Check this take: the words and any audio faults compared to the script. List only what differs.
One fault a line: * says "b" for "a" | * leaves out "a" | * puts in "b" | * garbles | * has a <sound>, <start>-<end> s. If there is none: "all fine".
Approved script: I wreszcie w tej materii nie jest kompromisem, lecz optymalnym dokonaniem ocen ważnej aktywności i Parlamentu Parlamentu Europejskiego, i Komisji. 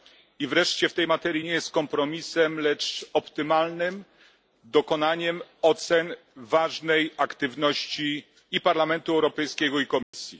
* leaves out "Parlamentu"
* has a dropout, 10.0-10.1 s